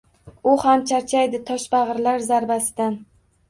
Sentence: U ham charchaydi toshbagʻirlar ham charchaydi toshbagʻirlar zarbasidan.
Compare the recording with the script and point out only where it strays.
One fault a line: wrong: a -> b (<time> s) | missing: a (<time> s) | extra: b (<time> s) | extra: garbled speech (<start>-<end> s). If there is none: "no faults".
missing: ham charchaydi toshbagʻirlar (2.3 s)